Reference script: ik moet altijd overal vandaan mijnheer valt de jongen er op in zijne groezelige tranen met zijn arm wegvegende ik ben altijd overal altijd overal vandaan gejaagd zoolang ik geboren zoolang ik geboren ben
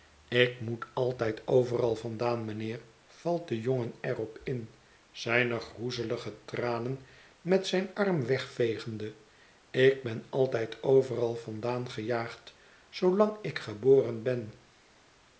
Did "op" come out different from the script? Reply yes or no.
no